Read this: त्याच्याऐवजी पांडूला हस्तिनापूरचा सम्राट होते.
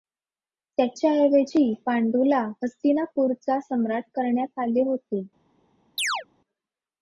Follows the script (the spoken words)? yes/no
no